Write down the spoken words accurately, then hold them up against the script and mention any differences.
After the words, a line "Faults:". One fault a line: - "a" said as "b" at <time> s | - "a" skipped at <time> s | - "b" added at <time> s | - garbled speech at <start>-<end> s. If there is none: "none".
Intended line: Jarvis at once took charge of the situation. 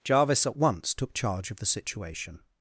Jarvis at once took charge of the situation.
Faults:
none